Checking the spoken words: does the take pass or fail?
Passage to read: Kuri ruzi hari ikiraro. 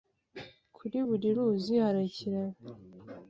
fail